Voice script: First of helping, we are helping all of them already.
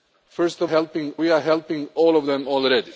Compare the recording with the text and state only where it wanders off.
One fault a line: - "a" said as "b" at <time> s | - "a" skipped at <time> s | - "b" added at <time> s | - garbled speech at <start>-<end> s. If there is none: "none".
none